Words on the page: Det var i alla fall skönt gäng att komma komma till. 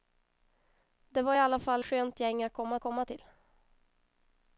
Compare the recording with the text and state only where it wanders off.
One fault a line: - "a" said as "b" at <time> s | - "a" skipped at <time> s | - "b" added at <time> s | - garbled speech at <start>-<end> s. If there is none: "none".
none